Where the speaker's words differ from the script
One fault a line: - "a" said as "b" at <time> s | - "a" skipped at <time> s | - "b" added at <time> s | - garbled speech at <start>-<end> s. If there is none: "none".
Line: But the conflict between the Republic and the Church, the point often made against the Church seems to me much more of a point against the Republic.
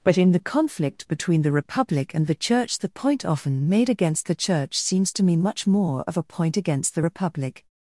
- "in" added at 0.2 s